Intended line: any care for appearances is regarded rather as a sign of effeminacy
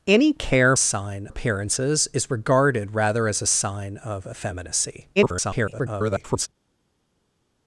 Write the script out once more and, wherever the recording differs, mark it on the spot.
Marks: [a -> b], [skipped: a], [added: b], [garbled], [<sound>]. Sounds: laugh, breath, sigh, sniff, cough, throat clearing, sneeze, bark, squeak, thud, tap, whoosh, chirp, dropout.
any care [for -> sign] appearances is regarded rather as a sign of effeminacy [garbled]